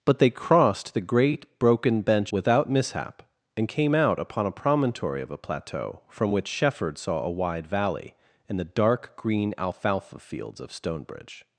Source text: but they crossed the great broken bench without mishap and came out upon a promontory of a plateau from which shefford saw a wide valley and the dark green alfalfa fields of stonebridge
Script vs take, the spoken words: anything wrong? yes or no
no